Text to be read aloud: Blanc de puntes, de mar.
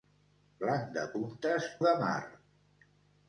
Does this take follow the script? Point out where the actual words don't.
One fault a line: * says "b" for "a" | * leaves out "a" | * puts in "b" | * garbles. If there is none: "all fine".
all fine